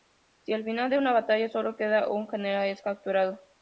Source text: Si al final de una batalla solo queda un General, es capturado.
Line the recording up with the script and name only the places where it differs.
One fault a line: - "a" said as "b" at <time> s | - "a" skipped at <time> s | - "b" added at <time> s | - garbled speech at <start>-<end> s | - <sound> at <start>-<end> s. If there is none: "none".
none